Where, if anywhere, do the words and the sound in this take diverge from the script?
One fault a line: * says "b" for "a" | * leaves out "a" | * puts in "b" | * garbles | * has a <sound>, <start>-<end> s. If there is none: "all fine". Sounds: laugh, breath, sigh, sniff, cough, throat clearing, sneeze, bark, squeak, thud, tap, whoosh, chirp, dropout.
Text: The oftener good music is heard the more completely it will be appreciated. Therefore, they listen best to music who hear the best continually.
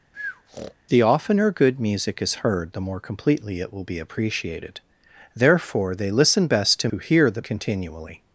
* has a breath, 0.1-0.7 s
* leaves out "music"
* leaves out "best"